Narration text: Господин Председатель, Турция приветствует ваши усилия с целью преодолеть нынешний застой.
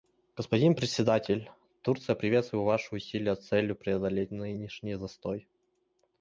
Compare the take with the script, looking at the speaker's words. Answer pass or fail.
pass